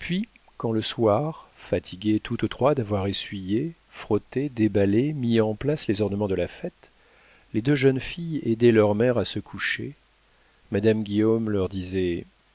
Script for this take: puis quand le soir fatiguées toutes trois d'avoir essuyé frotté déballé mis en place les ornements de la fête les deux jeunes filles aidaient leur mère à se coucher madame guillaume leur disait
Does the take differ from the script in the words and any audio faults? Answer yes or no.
no